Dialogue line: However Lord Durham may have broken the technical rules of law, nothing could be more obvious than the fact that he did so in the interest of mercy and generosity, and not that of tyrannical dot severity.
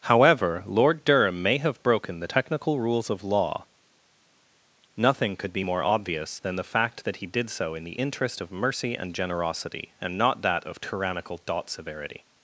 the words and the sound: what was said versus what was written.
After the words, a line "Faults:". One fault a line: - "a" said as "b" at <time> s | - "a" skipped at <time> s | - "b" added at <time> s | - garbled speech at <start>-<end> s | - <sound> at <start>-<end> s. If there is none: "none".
However Lord Durham may have broken the technical rules of law, nothing could be more obvious than the fact that he did so in the interest of mercy and generosity, and not that of tyrannical dot severity.
Faults:
none